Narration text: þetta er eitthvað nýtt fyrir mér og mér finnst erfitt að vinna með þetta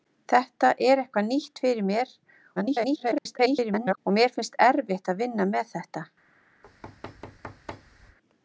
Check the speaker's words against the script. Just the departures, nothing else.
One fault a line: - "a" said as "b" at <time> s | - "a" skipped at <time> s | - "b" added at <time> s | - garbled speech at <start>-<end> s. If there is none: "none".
- garbled speech at 2.6-4.0 s